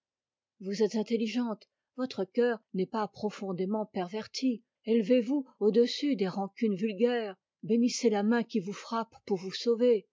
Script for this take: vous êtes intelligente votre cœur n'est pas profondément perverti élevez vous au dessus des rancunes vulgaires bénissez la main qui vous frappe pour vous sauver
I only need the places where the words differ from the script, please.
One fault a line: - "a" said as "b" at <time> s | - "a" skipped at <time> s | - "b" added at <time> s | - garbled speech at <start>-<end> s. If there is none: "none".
none